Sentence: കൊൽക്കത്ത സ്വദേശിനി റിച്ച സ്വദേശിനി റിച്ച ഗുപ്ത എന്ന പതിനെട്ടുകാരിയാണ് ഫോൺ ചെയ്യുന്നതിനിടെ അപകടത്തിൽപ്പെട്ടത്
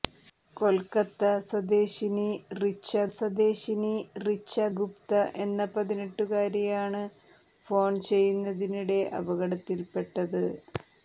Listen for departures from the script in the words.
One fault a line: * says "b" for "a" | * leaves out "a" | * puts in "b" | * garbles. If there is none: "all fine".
all fine